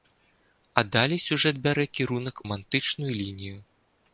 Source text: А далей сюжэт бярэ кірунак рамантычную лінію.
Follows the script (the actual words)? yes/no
yes